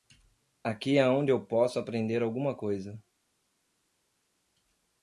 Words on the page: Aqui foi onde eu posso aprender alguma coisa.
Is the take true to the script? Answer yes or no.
no